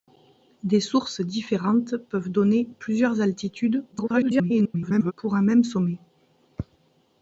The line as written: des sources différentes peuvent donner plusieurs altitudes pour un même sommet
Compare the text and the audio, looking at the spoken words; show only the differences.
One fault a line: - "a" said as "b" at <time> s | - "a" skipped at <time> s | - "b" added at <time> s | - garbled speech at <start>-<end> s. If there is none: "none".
- garbled speech at 3.9-5.1 s